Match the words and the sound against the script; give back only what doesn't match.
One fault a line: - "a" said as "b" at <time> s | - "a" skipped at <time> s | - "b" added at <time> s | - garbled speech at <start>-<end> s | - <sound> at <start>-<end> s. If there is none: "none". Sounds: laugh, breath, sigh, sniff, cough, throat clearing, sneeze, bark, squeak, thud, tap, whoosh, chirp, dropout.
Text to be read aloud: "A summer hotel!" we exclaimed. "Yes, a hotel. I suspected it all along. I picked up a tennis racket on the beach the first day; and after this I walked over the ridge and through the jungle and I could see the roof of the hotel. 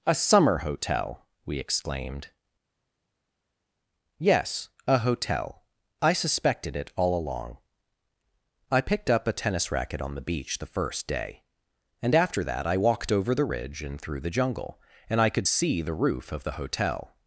- "this" said as "that" at 12.4 s